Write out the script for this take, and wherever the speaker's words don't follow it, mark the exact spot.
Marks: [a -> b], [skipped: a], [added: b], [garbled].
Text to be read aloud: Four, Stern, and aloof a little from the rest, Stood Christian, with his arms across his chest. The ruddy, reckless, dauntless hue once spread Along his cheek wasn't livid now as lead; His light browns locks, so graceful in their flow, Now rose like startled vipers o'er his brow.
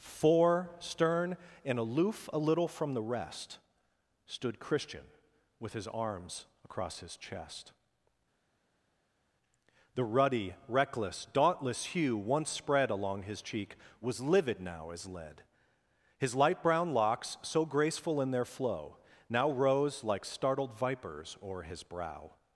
Four, Stern, and aloof a little from the rest, Stood Christian, with his arms across his chest. The ruddy, reckless, dauntless hue once spread Along his cheek [wasn't -> was] livid now as lead; His light [browns -> brown] locks, so graceful in their flow, Now rose like startled vipers o'er his brow.